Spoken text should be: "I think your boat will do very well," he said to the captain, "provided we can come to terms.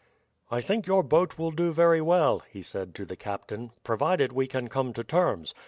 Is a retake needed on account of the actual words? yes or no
no